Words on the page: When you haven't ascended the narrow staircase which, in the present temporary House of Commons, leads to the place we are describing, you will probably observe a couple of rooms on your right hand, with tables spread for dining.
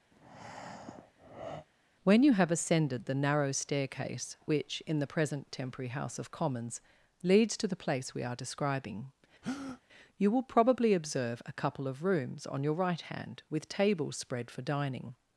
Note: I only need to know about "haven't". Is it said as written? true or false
false